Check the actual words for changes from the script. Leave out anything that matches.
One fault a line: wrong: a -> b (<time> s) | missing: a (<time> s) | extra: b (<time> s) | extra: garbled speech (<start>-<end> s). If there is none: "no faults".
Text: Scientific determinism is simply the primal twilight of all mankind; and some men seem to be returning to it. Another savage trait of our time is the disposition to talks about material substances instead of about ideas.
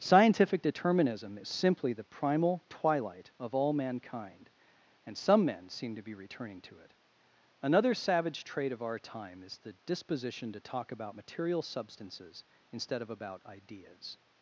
wrong: talks -> talk (10.6 s)